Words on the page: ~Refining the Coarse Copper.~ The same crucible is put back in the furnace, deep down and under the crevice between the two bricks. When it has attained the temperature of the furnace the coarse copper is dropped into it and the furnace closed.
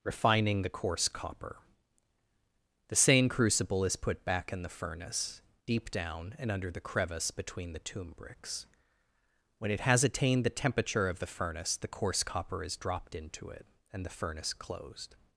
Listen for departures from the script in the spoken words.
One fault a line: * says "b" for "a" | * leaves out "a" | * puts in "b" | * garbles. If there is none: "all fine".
* says "tomb" for "two"